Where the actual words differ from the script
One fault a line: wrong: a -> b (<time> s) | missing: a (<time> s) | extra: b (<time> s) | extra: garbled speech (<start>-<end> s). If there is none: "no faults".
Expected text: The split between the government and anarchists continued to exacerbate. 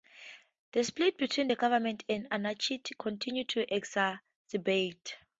no faults